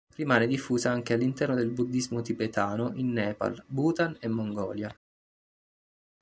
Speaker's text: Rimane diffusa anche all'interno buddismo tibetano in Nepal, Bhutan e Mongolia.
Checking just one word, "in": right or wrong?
right